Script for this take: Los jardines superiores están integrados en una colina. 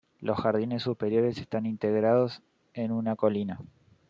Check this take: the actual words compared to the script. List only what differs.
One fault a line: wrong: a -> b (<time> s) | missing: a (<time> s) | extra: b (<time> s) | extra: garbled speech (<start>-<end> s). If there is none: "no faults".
no faults